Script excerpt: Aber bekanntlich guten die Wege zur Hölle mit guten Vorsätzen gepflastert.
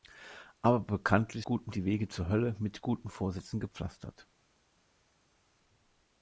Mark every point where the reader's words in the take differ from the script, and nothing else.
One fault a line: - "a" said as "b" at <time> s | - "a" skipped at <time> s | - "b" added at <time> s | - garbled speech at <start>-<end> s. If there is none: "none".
none